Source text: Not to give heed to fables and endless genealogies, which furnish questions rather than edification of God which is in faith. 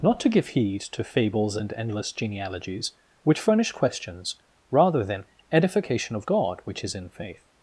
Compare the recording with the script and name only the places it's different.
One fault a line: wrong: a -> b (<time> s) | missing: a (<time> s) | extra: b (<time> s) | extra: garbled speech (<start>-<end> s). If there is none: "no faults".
no faults